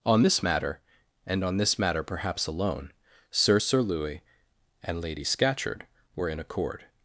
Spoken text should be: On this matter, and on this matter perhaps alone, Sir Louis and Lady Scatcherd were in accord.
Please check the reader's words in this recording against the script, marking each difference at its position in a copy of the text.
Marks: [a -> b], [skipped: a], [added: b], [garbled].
On this matter, and on this matter perhaps alone, Sir [added: Sir] Louis and Lady Scatcherd were in accord.